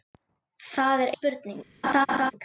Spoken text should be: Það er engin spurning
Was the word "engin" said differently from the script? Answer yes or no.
yes